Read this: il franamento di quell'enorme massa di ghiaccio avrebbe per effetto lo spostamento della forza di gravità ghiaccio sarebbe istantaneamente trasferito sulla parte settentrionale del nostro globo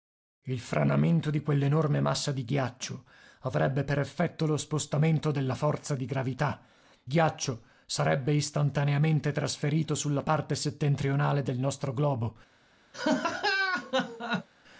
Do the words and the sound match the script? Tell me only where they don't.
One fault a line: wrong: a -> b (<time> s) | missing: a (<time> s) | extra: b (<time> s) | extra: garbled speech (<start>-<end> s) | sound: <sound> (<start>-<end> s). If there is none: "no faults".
sound: laugh (12.9-14.5 s)